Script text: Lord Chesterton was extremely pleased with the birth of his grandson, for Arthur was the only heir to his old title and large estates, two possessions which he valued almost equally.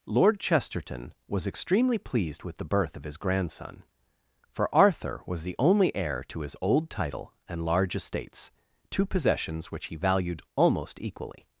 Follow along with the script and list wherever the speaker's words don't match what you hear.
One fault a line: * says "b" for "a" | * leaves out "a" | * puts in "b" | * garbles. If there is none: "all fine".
all fine